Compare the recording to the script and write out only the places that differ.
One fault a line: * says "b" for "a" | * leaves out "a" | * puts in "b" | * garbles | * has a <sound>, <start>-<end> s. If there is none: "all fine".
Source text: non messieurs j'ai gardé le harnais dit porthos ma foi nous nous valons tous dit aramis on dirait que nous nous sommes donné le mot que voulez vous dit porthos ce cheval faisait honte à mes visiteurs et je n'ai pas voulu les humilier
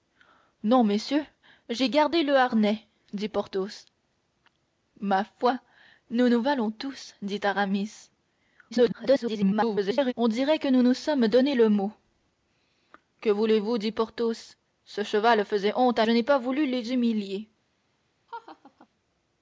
* garbles
* leaves out "mes visiteurs et"
* has a laugh, 18.3-18.9 s